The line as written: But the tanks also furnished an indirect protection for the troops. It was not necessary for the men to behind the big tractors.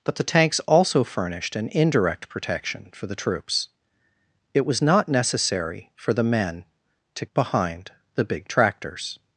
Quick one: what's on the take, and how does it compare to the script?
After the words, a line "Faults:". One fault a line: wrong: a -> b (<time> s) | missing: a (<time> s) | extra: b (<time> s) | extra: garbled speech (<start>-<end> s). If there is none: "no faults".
But the tanks also furnished an indirect protection for the troops. It was not necessary for the men to behind the big tractors.
Faults:
no faults